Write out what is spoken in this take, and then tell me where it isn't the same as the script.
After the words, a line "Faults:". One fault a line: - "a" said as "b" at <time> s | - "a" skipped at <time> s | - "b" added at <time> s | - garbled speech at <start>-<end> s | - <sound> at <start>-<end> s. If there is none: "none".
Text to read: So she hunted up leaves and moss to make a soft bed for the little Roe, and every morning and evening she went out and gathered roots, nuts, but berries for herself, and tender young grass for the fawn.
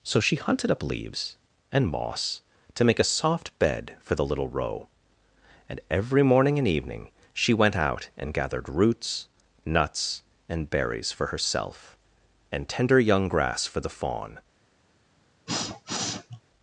So she hunted up leaves and moss to make a soft bed for the little Roe, and every morning and evening she went out and gathered roots, nuts, and berries for herself, and tender young grass for the fawn.
Faults:
- "but" said as "and" at 10.5 s
- sniff at 15.5-16.4 s